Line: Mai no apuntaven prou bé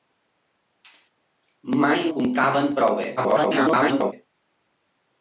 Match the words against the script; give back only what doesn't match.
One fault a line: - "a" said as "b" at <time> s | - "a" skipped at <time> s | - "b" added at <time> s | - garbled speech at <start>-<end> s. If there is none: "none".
- "no" skipped at 2.0 s
- garbled speech at 3.2-4.1 s